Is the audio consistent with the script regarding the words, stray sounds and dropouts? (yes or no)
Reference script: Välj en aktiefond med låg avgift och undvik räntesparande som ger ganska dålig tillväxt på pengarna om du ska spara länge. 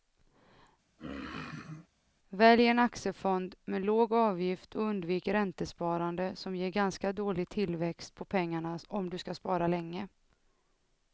no